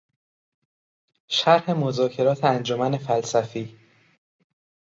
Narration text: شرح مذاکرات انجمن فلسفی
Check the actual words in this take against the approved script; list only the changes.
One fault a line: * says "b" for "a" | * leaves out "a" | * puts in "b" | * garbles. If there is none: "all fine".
all fine